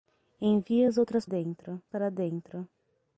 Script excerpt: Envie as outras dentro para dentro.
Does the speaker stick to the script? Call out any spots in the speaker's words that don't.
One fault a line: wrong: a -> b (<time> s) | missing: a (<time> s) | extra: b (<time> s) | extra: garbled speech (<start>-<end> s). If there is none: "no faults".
no faults